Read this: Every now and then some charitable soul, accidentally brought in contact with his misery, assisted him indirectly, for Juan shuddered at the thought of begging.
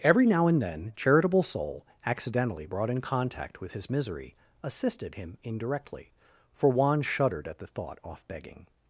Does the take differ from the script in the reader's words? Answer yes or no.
yes